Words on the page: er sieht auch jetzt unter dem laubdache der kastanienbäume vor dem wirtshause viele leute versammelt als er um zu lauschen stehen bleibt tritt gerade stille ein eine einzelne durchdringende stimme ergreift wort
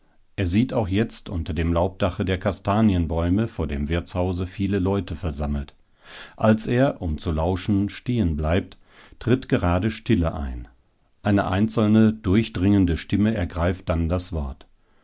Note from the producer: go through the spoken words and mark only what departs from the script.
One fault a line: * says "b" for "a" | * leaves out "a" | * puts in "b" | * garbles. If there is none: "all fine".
* puts in "dann das"